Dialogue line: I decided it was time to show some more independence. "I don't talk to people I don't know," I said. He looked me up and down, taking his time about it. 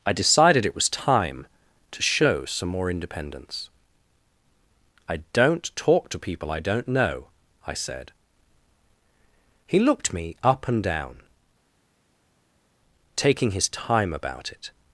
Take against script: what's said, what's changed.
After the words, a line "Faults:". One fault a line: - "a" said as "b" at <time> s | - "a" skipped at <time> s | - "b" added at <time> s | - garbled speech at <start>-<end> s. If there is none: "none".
I decided it was time to show some more independence. "I don't talk to people I don't know," I said. He looked me up and down, taking his time about it.
Faults:
none